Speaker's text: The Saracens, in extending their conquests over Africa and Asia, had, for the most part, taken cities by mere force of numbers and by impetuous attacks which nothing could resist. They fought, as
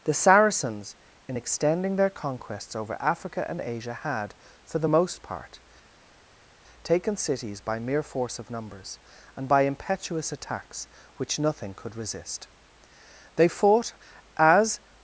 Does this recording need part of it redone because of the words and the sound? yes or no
no